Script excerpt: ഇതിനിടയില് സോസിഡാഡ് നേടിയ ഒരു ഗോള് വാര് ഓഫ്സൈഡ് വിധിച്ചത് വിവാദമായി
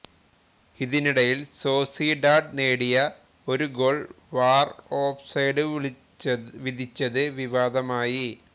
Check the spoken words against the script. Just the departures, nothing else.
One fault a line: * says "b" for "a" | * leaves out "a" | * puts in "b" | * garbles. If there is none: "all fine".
all fine